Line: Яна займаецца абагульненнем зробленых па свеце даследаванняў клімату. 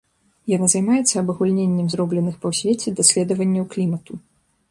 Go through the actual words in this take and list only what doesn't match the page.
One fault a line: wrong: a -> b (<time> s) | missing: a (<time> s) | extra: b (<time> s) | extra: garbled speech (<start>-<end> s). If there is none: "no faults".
no faults